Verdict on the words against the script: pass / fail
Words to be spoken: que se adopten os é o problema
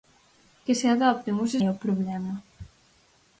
pass